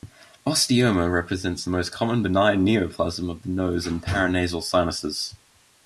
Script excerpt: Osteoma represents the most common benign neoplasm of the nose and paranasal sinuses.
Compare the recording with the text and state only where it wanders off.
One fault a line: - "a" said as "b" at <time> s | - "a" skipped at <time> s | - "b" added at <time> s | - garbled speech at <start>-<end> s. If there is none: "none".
none